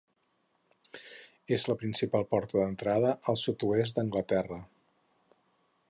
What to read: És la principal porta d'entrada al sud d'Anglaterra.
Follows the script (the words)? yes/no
no